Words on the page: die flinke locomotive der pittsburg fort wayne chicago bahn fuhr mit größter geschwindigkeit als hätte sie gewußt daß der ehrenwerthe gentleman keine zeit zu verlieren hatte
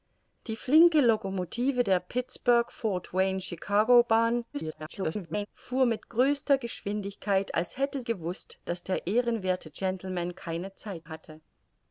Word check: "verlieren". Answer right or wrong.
wrong